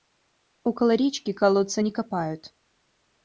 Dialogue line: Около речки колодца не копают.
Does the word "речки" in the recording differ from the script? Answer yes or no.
no